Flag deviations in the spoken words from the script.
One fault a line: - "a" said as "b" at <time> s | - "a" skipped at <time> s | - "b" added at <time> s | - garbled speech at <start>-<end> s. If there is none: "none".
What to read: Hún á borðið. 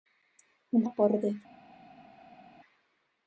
none